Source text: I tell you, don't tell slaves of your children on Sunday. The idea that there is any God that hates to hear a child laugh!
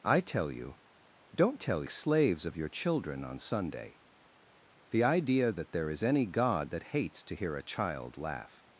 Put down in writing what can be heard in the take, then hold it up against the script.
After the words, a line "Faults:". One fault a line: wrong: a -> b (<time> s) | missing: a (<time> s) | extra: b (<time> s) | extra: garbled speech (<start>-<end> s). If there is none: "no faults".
I tell you, don't tell slaves of your children on Sunday. The idea that there is any God that hates to hear a child laugh!
Faults:
no faults